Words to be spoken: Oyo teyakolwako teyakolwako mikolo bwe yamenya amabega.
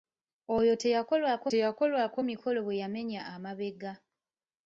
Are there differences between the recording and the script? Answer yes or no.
no